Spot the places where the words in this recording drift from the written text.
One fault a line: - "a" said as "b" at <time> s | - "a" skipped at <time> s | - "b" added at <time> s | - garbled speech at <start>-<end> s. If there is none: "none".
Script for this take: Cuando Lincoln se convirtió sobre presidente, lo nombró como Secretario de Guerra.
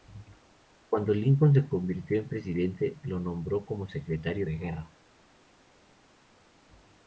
- "sobre" said as "en" at 2.2 s